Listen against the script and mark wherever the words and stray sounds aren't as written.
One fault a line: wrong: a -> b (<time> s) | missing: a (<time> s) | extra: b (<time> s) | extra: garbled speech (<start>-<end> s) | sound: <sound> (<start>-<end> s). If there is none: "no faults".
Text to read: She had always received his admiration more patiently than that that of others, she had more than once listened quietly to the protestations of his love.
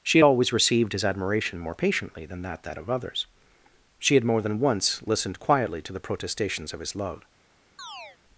sound: chirp (7.8-8.2 s)